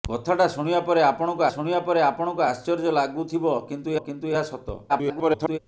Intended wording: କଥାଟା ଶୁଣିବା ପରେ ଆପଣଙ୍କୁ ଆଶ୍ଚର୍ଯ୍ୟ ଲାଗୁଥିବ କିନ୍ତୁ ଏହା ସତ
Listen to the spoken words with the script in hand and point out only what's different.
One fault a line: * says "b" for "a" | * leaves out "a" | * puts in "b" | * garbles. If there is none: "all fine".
* puts in "ଶୁଣିବା ପରେ ଆପଣଙ୍କୁ"
* puts in "କିନ୍ତୁ"
* garbles